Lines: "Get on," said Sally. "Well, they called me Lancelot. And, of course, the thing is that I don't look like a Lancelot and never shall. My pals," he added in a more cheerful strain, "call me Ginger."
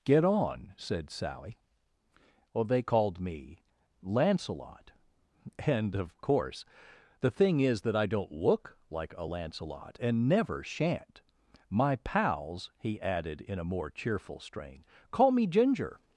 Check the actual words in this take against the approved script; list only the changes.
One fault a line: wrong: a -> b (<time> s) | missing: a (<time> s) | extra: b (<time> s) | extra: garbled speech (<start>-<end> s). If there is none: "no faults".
wrong: shall -> shan't (10.6 s)